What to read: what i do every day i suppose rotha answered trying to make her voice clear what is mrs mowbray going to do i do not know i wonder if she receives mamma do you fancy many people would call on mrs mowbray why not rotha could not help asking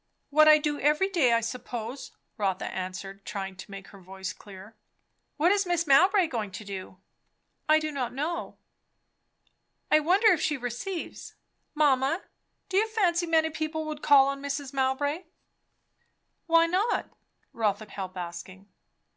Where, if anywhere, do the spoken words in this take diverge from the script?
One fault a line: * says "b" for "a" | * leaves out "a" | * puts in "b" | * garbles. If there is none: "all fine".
* leaves out "could not"